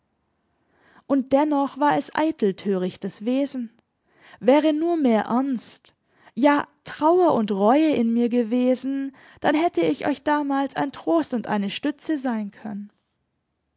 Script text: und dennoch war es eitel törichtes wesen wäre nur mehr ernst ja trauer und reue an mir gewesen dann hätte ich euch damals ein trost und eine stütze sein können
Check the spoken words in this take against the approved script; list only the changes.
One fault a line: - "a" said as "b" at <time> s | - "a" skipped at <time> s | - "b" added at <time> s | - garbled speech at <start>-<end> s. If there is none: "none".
- "an" said as "in" at 7.9 s